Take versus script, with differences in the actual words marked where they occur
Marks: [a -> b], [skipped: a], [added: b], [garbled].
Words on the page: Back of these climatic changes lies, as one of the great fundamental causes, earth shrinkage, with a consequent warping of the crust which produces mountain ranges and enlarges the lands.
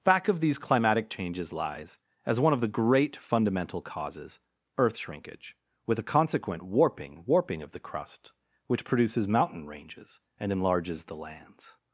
Back of these climatic changes lies, as one of the great fundamental causes, earth shrinkage, with a consequent warping [added: warping] of the crust which produces mountain ranges and enlarges the lands.